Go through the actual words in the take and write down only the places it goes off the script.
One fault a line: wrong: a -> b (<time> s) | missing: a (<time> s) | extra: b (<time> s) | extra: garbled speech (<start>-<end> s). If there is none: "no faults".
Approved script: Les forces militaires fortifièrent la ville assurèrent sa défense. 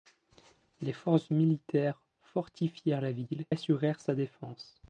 no faults